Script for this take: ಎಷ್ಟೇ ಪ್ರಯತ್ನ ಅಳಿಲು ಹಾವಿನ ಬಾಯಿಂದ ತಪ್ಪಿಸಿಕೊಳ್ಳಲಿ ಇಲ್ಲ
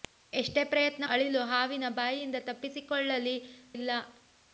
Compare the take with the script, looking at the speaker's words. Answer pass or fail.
pass